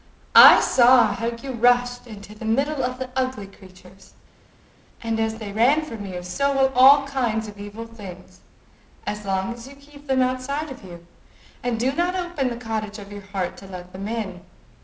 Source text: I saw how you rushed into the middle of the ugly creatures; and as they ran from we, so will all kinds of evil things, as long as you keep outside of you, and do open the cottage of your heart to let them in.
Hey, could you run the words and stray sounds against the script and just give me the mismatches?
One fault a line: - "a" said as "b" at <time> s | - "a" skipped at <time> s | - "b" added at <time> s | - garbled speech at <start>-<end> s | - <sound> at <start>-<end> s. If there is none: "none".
- "we" said as "you" at 6.0 s
- "them" added at 10.1 s
- "not" added at 11.9 s